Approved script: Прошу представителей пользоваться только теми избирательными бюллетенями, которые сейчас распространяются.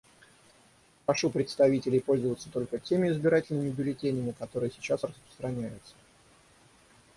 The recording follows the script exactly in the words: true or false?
true